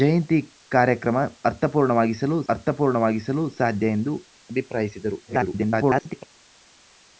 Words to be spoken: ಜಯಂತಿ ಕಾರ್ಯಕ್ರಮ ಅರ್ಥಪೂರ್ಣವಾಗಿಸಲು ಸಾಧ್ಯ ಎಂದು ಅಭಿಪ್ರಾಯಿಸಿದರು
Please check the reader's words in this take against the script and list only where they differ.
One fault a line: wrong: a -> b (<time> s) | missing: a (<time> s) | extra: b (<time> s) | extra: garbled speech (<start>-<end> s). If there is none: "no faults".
extra: ಅರ್ಥಪೂರ್ಣವಾಗಿಸಲು (2.5 s)
extra: garbled speech (5.3-6.3 s)